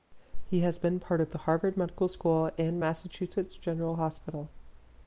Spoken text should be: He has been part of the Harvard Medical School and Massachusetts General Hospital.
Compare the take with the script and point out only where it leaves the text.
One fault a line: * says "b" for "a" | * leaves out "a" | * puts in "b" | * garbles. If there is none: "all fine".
all fine